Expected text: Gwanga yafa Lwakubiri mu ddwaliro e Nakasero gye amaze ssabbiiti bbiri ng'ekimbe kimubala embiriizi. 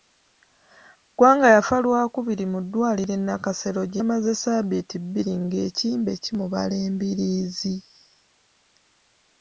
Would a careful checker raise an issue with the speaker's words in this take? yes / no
no